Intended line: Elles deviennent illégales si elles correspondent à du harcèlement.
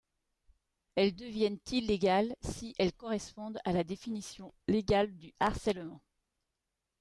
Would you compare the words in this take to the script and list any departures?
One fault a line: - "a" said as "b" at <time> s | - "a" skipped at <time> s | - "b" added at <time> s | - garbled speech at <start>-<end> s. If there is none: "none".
- "la définition légale" added at 3.7 s